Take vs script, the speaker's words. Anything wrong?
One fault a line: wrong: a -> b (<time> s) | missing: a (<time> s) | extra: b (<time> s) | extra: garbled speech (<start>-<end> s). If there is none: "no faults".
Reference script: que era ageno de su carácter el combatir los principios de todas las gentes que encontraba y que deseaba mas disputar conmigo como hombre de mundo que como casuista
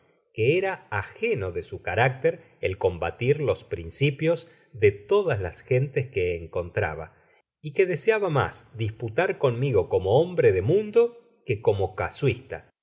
no faults